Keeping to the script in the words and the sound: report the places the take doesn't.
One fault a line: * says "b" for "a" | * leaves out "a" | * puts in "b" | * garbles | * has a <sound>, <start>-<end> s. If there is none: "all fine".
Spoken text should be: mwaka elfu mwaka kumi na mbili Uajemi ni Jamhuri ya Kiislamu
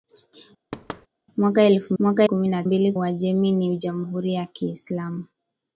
* has a thud, 0.7-1.1 s